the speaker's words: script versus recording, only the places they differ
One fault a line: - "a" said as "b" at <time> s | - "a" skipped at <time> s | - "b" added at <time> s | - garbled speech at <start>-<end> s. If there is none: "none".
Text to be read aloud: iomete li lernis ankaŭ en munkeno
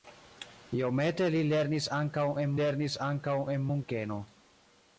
- "lernis ankaŭ en" added at 2.6 s